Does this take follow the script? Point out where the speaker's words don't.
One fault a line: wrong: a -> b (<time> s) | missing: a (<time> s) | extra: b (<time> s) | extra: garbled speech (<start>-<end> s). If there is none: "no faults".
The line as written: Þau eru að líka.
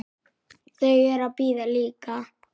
extra: bíða (1.4 s)